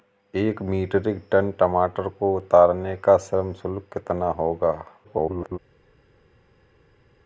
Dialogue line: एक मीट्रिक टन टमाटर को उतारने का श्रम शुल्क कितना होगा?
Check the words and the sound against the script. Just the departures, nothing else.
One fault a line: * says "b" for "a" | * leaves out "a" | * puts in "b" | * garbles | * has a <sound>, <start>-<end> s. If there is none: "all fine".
* garbles